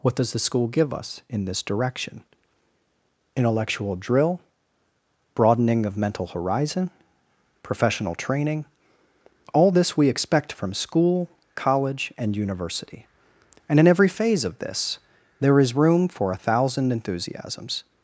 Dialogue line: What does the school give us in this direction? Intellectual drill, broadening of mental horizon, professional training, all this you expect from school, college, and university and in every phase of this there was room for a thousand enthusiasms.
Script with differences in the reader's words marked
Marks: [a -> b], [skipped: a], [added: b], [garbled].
What does the school give us in this direction? Intellectual drill, broadening of mental horizon, professional training, all this [you -> we] expect from school, college, and university and in every phase of this there [was -> is] room for a thousand enthusiasms.